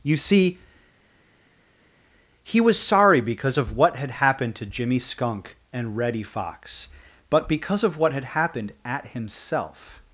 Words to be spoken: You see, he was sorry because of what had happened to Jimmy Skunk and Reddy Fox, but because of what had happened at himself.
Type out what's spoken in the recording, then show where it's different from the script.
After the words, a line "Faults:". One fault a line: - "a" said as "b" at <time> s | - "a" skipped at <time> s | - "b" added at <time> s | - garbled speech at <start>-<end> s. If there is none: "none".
You see, he was sorry because of what had happened to Jimmy Skunk and Reddy Fox, but because of what had happened at himself.
Faults:
none